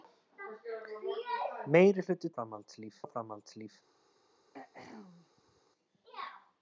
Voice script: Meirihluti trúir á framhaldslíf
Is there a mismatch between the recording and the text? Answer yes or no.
yes